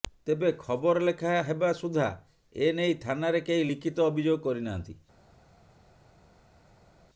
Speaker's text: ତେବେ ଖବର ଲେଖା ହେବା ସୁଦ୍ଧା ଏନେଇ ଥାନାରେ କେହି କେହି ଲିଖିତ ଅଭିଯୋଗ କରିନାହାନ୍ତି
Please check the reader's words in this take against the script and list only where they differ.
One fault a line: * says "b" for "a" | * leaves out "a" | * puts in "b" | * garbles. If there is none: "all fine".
* leaves out "କେହି"